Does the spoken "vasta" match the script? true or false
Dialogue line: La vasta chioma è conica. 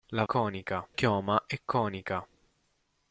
false